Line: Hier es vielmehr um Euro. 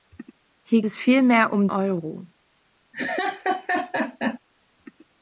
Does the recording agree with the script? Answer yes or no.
yes